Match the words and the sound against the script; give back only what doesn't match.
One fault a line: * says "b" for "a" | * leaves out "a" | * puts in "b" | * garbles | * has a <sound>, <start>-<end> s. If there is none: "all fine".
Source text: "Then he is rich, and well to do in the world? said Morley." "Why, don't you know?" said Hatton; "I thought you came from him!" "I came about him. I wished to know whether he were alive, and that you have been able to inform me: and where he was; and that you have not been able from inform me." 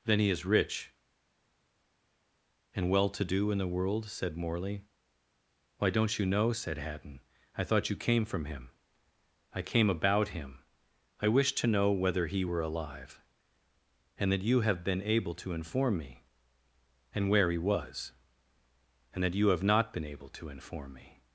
* says "to" for "from"